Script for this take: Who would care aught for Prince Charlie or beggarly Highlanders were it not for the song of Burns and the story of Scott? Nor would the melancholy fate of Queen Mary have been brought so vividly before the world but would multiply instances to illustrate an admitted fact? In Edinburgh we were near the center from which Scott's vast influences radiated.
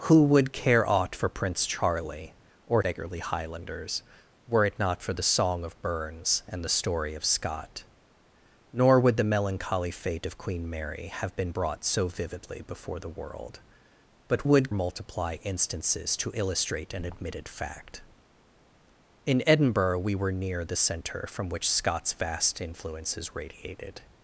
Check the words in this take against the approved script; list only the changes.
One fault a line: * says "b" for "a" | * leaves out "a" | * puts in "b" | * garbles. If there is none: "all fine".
all fine